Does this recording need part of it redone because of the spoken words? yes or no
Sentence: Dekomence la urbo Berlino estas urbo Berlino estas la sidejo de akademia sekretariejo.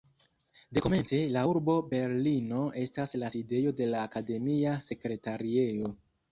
yes